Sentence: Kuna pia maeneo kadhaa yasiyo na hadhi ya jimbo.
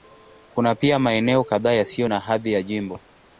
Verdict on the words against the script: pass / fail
pass